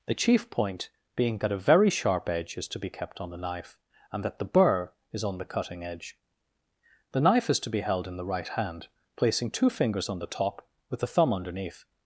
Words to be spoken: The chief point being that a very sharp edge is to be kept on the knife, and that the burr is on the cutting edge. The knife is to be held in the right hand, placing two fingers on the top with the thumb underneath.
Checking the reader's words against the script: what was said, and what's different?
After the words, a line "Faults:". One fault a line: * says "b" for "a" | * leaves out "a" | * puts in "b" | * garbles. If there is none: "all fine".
The chief point being that a very sharp edge is to be kept on the knife, and that the burr is on the cutting edge. The knife is to be held in the right hand, placing two fingers on the top with the thumb underneath.
Faults:
all fine